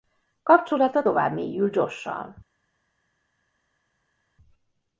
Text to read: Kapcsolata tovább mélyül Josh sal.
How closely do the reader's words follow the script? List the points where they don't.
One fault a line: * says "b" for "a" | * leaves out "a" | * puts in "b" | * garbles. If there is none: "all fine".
all fine